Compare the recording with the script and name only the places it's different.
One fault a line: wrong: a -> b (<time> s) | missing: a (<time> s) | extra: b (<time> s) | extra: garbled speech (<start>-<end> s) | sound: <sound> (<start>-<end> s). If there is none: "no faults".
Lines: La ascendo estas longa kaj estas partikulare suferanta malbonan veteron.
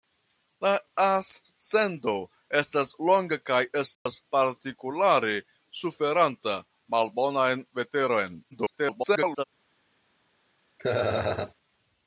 sound: dropout (3.9-4.1 s)
extra: garbled speech (8.5-9.4 s)
sound: laugh (10.8-11.5 s)